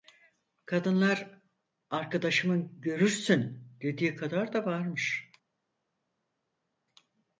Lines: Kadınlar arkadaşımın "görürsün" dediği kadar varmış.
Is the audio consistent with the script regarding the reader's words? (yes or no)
no